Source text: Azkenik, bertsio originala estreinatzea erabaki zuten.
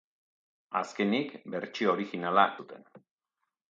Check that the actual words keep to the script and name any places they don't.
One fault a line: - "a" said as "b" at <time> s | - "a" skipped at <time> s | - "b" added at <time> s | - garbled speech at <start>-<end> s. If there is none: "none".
- "estreinatzea erabaki" skipped at 2.5 s